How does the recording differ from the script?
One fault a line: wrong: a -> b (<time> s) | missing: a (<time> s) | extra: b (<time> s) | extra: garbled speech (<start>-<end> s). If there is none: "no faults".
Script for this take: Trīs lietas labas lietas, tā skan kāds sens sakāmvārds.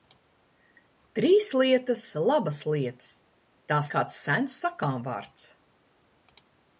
missing: skan (3.8 s)